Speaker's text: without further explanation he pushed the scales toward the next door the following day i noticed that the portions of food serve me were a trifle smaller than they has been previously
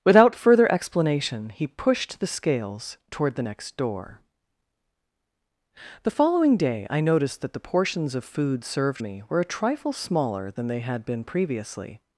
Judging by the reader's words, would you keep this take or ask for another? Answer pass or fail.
fail